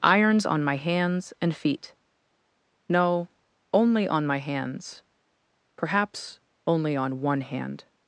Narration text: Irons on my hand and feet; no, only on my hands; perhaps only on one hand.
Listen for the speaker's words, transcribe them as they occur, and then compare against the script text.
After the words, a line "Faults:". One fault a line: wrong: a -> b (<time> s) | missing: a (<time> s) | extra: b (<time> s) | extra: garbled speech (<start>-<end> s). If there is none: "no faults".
Irons on my hands and feet; no, only on my hands; perhaps only on one hand.
Faults:
wrong: hand -> hands (0.8 s)